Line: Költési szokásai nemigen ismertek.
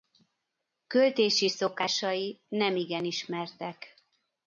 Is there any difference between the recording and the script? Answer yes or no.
no